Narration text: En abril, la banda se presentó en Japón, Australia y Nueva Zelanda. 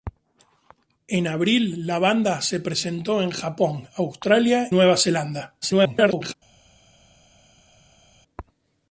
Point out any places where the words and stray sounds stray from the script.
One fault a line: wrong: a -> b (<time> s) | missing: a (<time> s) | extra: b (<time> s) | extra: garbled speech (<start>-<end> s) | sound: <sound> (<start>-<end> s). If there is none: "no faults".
missing: y (4.7 s)
extra: garbled speech (5.6-6.3 s)